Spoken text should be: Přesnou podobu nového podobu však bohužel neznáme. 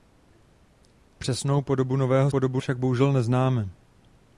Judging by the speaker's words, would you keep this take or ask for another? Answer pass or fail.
pass